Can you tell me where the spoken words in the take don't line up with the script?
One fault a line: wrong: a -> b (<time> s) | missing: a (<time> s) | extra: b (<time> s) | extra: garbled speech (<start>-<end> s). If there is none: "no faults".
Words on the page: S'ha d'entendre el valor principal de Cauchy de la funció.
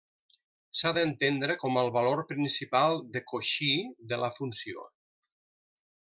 extra: com (1.6 s)